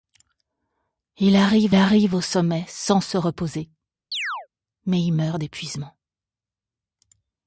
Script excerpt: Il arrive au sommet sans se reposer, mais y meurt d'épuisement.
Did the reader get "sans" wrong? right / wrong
right